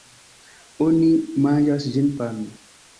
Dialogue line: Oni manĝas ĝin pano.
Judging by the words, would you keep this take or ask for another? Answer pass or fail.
pass